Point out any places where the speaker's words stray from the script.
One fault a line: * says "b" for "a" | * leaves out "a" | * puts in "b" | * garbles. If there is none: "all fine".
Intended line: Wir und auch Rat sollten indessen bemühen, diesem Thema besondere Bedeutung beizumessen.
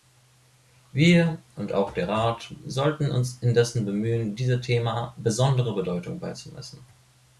* puts in "der"
* puts in "uns"